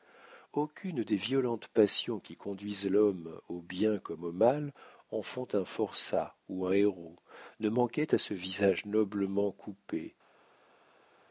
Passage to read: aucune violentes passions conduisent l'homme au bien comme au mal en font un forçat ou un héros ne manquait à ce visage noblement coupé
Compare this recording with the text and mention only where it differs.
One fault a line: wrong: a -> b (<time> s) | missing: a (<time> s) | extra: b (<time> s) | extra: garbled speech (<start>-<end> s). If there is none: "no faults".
extra: des (1.0 s)
extra: qui (2.2 s)